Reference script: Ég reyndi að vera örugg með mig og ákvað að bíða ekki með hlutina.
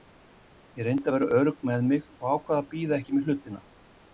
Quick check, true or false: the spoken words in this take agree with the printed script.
true